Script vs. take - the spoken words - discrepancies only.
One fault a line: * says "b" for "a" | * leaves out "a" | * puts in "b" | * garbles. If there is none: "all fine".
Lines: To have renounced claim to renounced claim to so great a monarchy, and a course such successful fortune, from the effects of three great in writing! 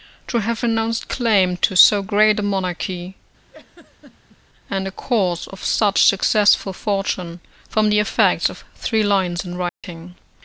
* leaves out "renounced claim to"
* puts in "of"
* says "lines" for "great"